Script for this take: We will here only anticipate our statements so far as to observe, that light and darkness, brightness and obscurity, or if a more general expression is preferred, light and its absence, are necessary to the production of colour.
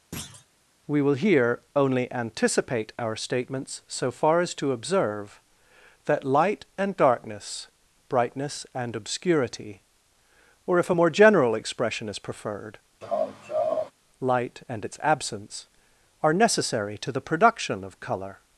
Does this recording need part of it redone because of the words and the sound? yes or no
yes